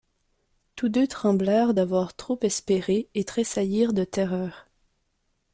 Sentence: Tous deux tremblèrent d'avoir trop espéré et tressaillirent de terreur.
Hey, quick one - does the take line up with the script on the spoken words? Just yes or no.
yes